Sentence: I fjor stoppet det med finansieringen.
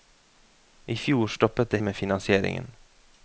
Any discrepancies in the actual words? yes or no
no